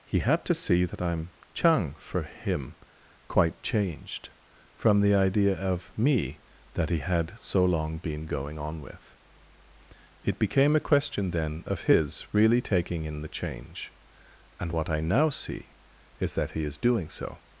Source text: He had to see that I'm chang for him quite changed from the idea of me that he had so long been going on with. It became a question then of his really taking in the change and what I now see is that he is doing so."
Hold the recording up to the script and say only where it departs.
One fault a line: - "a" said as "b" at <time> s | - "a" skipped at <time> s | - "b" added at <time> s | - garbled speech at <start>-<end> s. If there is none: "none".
none